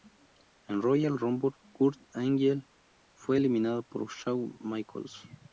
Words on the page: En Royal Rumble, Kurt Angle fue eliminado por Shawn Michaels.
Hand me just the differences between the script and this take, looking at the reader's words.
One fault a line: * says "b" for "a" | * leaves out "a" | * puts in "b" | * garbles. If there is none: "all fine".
all fine